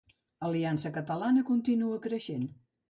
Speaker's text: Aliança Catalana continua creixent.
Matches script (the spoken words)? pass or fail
pass